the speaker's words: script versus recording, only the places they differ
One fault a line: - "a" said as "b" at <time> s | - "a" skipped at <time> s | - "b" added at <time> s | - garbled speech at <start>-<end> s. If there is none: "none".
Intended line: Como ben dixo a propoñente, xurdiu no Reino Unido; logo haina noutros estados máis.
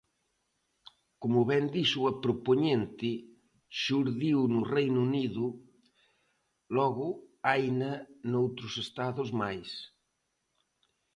none